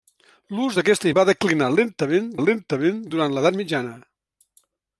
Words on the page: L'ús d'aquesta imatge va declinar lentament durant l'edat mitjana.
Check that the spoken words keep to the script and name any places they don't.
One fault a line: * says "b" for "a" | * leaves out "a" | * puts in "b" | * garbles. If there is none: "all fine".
* leaves out "imatge"
* puts in "lentament"